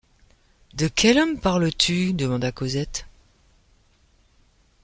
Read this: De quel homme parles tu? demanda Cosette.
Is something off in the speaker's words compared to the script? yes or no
no